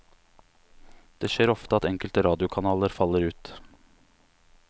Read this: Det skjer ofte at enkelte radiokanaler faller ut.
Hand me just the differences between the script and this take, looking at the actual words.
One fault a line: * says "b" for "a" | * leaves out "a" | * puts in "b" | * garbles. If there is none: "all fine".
all fine